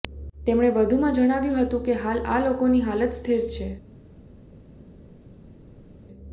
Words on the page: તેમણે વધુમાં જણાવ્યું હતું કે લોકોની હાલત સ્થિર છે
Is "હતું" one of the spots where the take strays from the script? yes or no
no